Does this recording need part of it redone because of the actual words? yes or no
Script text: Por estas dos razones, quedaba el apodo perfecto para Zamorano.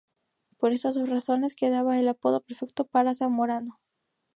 no